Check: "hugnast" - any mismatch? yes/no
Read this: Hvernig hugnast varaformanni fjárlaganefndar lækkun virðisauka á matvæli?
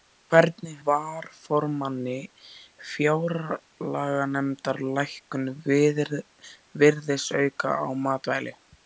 yes